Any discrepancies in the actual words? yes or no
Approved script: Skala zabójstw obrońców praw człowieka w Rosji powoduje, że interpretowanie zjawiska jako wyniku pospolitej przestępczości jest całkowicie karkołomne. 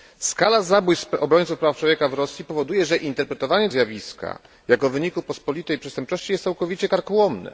no